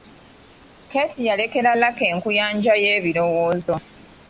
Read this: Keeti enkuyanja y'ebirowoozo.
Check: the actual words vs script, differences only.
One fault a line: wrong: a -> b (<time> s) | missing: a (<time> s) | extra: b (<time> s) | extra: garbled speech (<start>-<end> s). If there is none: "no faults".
extra: yalekera Lucky (1.3 s)